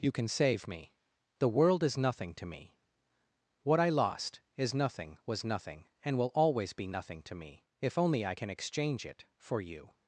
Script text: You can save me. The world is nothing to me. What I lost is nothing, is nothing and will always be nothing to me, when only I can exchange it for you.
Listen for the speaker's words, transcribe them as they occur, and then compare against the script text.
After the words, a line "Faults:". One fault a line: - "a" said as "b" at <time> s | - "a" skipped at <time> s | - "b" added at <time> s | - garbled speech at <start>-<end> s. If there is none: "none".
You can save me. The world is nothing to me. What I lost is nothing, was nothing and will always be nothing to me, if only I can exchange it for you.
Faults:
- "is" said as "was" at 5.3 s
- "when" said as "if" at 7.8 s